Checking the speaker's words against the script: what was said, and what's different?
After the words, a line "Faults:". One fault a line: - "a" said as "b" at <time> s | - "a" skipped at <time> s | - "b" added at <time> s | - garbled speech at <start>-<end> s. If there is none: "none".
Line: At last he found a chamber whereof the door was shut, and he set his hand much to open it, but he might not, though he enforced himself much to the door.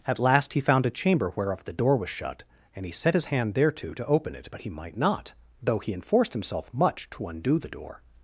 At last he found a chamber whereof the door was shut, and he set his hand thereto to open it, but he might not, though he enforced himself much to undo the door.
Faults:
- "much" said as "thereto" at 3.5 s
- "undo" added at 7.3 s